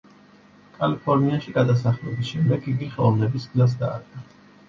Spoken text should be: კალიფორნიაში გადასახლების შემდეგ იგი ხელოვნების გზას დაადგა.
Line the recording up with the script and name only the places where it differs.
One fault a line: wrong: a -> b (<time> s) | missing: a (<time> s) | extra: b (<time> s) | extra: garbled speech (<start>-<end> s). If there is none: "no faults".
no faults